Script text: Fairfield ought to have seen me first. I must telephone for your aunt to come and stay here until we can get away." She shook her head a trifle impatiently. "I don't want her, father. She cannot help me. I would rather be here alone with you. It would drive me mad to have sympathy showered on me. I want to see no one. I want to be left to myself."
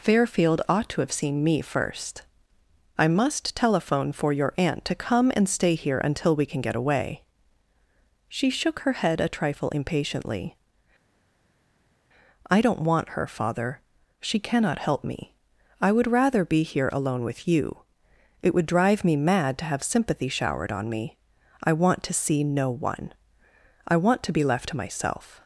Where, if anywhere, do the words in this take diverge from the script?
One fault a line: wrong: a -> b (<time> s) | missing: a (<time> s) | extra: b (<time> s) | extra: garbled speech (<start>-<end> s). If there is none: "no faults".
no faults